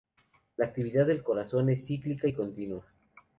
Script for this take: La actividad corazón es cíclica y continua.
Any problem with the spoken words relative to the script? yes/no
yes